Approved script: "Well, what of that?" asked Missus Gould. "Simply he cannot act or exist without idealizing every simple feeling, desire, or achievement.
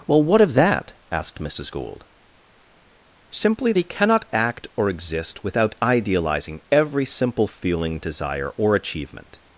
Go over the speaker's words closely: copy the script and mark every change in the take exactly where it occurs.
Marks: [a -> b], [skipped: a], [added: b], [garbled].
"Well, what of that?" asked Missus Gould. "Simply he cannot act or exist without idealizing every simple feeling, desire, or achievement.